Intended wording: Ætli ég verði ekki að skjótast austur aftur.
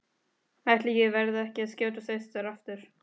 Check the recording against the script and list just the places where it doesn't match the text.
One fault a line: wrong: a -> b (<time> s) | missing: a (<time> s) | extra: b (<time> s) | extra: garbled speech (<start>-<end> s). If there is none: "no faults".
no faults